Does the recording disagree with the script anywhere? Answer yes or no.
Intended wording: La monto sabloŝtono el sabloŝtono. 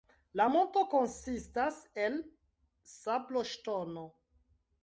yes